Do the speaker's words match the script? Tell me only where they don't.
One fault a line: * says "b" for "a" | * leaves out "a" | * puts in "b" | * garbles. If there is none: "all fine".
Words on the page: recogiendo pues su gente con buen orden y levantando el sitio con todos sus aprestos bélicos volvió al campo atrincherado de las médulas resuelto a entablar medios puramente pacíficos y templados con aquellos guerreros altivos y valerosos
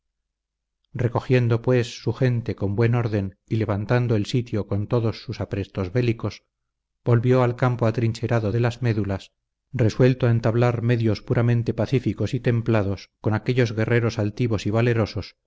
all fine